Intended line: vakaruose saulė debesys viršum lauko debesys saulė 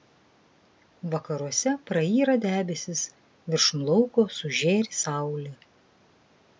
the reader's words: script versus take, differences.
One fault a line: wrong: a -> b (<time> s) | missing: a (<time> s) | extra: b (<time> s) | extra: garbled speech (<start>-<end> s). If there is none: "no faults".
wrong: saulė -> prayra (1.9 s)
wrong: debesys -> sužėri (4.4 s)